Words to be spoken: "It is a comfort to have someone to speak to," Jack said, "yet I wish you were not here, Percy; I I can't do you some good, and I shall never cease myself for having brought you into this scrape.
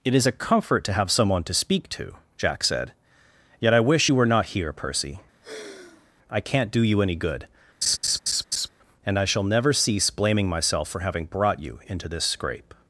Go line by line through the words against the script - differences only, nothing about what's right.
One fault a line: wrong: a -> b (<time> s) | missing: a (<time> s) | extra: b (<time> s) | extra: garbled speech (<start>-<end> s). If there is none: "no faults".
missing: I (6.4 s)
wrong: some -> any (7.0 s)
extra: blaming (10.1 s)